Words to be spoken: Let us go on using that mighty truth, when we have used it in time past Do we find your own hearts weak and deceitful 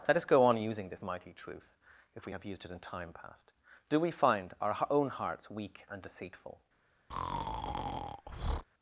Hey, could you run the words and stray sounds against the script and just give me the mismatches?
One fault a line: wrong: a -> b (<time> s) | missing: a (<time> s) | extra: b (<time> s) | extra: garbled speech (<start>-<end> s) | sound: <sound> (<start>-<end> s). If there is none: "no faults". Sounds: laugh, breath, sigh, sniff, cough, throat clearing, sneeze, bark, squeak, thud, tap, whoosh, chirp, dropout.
wrong: that -> this (0.9 s)
wrong: when -> if (2.1 s)
wrong: your -> our (4.6 s)
sound: breath (7.1-8.6 s)